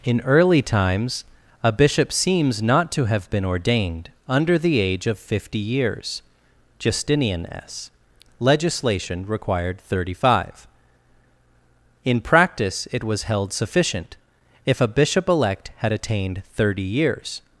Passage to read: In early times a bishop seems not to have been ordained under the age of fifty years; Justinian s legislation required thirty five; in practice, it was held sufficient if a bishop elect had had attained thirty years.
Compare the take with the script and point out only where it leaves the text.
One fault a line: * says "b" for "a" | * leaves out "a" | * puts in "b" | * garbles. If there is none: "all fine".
* leaves out "had"